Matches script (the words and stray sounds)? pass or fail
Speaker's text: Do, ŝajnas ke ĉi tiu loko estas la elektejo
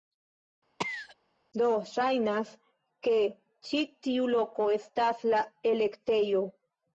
fail